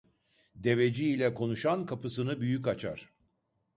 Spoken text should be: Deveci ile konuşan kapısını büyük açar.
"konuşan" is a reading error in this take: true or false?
false